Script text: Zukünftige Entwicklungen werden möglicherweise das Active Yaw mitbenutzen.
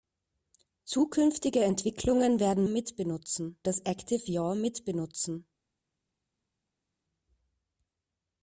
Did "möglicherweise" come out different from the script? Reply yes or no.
yes